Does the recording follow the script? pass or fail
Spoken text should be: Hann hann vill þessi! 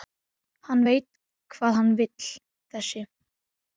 fail